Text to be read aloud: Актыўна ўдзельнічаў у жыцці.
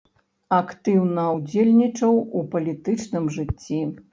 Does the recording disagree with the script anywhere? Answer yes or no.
yes